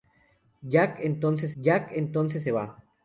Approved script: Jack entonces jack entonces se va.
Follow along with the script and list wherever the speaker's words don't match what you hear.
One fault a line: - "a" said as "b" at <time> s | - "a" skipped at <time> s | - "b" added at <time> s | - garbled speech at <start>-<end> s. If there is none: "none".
none